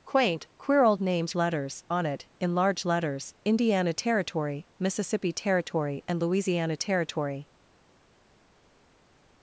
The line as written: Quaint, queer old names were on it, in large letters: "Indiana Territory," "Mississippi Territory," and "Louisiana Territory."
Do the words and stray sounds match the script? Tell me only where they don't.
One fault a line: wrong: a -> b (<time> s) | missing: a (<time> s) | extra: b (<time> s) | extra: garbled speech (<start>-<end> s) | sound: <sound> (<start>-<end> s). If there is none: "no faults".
wrong: were -> letters (1.3 s)